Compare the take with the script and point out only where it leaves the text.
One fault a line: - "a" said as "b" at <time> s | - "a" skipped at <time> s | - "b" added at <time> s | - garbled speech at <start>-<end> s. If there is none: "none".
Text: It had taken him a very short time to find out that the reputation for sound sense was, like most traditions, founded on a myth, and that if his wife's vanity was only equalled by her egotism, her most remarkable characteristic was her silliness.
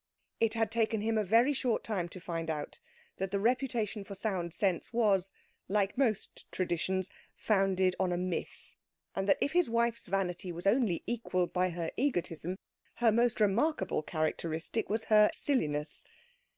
none